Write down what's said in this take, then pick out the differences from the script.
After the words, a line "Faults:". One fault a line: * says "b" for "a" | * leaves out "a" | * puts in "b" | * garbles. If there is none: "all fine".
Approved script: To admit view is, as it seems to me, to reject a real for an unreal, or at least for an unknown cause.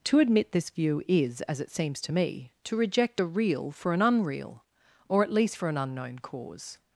To admit this view is, as it seems to me, to reject a real for an unreal, or at least for an unknown cause.
Faults:
* puts in "this"